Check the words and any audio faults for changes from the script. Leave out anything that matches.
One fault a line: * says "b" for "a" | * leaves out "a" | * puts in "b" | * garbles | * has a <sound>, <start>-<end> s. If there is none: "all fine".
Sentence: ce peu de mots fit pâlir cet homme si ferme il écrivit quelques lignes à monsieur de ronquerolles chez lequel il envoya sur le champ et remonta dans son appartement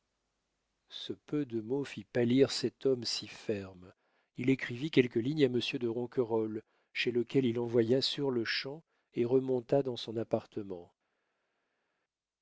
all fine